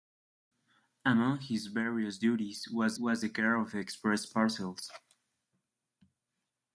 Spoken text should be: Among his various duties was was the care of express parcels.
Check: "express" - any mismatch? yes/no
no